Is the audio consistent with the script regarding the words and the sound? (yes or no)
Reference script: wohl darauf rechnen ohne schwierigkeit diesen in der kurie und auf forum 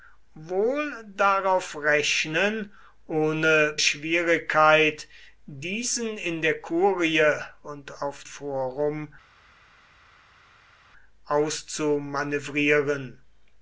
yes